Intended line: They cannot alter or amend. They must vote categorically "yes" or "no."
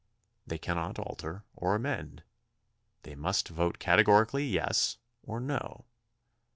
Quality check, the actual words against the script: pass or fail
pass